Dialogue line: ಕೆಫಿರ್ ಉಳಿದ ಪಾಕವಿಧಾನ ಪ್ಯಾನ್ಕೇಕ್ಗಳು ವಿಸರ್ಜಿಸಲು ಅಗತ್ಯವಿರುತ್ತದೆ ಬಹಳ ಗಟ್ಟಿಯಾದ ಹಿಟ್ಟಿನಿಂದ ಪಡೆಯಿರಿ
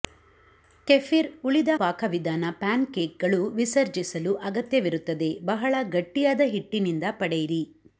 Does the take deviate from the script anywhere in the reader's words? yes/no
no